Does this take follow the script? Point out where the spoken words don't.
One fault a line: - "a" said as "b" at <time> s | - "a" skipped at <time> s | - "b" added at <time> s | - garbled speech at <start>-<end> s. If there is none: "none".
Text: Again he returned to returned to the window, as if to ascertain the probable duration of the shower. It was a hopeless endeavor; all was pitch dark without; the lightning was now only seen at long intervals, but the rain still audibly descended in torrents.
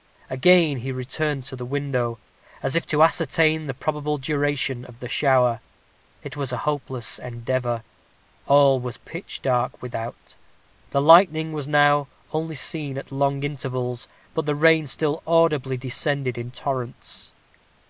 - "returned to" skipped at 1.6 s